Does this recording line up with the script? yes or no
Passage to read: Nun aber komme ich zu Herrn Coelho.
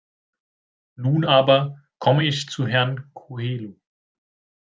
yes